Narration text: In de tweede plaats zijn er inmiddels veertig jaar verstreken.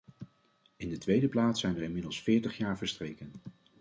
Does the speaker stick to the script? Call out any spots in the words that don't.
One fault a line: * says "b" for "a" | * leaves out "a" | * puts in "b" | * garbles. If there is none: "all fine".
all fine